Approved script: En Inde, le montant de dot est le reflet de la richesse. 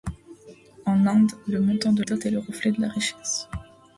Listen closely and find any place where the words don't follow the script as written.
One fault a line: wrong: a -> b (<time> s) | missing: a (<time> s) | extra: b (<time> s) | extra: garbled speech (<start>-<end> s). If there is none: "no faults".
no faults